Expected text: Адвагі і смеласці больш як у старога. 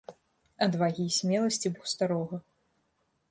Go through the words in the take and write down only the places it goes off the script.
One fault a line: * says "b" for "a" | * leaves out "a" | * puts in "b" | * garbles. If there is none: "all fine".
* leaves out "больш"